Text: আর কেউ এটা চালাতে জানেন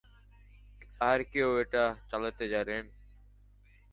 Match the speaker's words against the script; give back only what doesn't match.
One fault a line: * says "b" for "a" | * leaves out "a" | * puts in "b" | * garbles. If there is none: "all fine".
all fine